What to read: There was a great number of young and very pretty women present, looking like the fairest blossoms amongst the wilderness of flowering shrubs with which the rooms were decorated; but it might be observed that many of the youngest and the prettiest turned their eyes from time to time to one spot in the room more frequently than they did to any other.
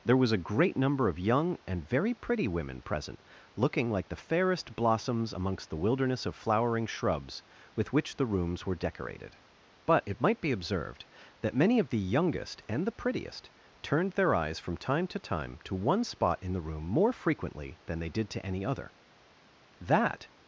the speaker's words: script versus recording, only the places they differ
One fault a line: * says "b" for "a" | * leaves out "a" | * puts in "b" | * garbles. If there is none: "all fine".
* puts in "That"